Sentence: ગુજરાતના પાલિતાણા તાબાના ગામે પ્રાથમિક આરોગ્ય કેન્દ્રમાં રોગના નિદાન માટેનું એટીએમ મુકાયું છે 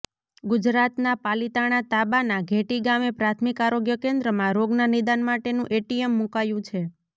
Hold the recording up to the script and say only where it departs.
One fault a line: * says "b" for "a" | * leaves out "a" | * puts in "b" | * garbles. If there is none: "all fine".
* puts in "ઘેટી"